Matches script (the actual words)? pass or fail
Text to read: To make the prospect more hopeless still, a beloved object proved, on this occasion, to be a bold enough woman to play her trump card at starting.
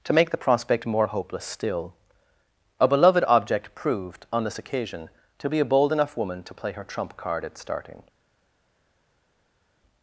pass